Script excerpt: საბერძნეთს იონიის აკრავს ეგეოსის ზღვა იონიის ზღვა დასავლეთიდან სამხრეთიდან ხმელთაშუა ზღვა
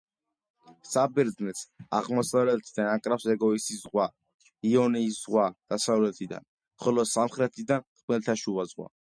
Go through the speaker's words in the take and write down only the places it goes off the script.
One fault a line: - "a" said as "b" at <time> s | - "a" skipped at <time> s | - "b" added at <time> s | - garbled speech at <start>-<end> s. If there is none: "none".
- "იონიის" said as "აღმოსავლეთიდან" at 2.0 s
- "ხოლო" added at 6.9 s